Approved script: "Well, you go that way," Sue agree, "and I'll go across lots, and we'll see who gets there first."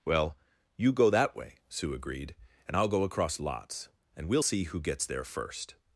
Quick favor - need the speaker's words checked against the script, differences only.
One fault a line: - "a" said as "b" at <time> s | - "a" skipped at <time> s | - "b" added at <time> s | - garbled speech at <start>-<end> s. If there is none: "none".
- "agree" said as "agreed" at 1.9 s